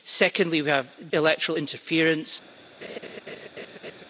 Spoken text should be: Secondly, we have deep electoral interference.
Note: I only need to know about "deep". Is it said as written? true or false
false